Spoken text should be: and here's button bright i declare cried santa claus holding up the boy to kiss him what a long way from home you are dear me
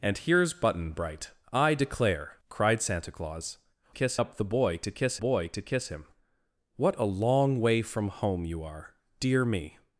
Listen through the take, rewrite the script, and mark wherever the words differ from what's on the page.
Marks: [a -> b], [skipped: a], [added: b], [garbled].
and here's button bright i declare cried santa claus [holding -> kiss] up the boy to kiss [added: boy to kiss] him what a long way from home you are dear me